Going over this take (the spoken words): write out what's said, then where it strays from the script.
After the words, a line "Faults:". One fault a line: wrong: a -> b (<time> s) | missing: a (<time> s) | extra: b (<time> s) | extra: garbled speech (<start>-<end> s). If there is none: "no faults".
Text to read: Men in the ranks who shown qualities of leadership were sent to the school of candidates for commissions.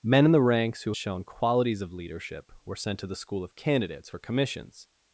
Men in the ranks who shown qualities of leadership were sent to the school of candidates for commissions.
Faults:
no faults